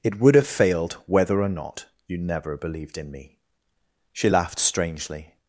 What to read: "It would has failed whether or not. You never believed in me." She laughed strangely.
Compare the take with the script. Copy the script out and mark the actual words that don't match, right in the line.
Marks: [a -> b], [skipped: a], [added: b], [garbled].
"It would [has -> have] failed whether or not. You never believed in me." She laughed strangely.